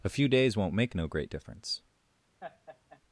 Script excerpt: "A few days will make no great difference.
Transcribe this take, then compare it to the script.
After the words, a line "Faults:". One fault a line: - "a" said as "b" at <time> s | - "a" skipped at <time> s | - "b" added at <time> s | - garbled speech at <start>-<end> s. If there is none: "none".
"A few days won't make no great difference.
Faults:
- "will" said as "won't" at 0.6 s